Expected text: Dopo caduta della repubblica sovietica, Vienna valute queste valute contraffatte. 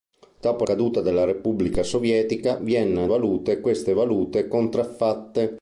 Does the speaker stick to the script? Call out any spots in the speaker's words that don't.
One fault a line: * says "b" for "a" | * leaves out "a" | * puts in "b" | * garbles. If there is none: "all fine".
all fine